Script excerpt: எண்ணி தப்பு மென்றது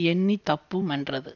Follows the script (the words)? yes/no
yes